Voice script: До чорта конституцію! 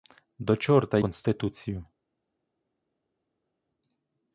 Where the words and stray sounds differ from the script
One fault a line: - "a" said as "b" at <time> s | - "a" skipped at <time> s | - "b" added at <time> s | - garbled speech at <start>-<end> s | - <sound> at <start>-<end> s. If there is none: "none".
none